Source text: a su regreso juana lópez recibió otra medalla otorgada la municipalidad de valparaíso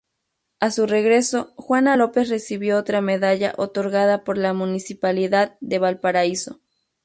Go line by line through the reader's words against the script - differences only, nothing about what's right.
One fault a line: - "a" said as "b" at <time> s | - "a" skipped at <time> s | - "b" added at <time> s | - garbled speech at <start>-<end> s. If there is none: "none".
- "por" added at 4.2 s